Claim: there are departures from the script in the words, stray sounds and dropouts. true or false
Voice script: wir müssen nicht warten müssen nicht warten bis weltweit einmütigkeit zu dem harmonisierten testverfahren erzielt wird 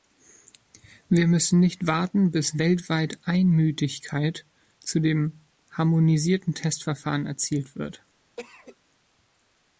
true